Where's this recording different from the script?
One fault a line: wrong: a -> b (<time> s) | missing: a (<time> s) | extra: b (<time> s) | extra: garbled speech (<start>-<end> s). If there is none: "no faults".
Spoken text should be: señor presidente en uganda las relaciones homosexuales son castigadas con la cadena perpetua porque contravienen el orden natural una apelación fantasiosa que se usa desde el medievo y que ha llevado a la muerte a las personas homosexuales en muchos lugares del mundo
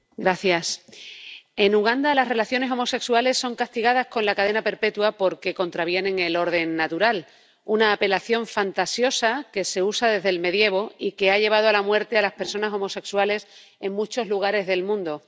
no faults